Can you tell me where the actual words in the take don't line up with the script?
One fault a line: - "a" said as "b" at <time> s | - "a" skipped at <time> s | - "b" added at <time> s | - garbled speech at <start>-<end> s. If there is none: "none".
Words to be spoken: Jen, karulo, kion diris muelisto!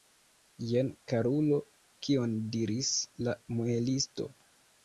- "la" added at 3.3 s